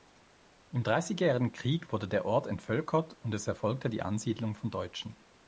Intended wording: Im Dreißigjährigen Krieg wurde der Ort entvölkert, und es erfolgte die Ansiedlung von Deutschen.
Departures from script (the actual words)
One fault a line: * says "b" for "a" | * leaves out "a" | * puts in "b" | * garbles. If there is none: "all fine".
all fine